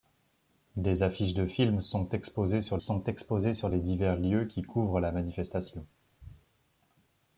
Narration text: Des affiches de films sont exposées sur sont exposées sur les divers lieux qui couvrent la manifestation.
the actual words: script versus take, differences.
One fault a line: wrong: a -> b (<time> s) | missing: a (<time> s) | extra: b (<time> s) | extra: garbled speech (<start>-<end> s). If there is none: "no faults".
no faults